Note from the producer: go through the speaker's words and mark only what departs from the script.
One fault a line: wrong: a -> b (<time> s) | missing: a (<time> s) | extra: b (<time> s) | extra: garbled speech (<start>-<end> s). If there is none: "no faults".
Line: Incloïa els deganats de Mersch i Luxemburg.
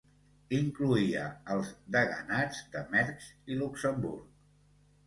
no faults